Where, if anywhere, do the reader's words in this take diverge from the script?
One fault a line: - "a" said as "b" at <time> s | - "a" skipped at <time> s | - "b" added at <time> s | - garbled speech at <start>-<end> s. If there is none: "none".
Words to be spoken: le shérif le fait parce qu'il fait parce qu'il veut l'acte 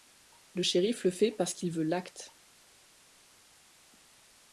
- "fait parce qu'il" skipped at 1.7 s